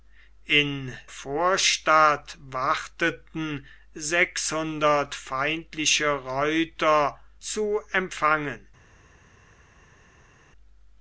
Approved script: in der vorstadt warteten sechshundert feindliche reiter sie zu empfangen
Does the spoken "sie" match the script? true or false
false